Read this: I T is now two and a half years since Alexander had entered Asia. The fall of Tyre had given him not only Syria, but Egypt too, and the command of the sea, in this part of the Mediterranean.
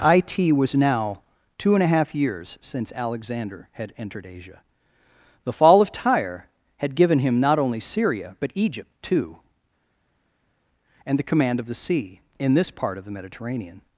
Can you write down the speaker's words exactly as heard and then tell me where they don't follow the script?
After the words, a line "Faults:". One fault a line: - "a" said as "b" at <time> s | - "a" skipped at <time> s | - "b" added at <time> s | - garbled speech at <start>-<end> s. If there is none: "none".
I T was now two and a half years since Alexander had entered Asia. The fall of Tyre had given him not only Syria, but Egypt too, and the command of the sea, in this part of the Mediterranean.
Faults:
- "is" said as "was" at 0.5 s